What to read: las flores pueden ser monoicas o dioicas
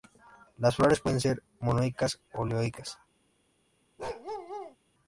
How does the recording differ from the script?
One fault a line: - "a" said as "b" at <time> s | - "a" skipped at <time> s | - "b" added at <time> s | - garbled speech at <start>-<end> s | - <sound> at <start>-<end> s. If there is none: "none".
- bark at 4.0-4.8 s